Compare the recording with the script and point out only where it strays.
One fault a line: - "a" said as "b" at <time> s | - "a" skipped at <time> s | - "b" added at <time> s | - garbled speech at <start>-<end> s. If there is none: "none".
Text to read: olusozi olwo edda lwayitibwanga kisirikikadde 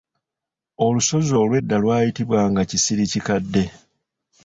none